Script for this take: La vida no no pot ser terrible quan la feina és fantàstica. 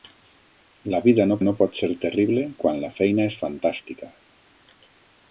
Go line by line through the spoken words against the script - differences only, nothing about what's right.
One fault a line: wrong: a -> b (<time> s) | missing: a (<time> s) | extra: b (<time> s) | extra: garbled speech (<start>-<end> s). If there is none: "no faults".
no faults